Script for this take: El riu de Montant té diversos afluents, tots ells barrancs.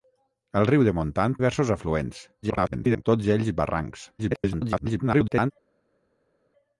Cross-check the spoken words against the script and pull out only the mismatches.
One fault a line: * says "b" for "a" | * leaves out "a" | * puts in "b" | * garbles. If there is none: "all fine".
* leaves out "té"
* garbles
* garbles